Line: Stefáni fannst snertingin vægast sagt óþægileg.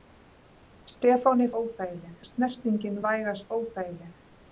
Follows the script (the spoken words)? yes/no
no